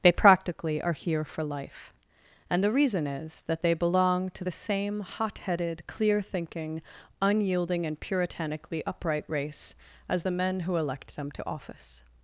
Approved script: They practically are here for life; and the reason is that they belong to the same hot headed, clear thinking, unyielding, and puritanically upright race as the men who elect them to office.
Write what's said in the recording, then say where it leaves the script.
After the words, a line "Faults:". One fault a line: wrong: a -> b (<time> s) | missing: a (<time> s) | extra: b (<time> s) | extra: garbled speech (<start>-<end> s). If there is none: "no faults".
They practically are here for life; and the reason is that they belong to the same hot headed, clear thinking, unyielding, and puritanically upright race as the men who elect them to office.
Faults:
no faults